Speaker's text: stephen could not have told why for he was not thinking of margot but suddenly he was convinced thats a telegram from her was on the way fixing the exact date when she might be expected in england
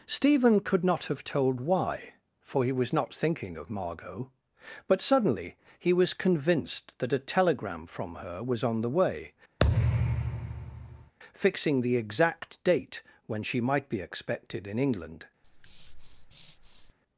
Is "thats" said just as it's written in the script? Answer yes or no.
no